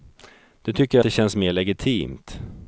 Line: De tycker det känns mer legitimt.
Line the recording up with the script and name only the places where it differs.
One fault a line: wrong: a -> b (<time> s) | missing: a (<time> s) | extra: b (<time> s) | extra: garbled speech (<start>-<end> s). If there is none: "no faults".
no faults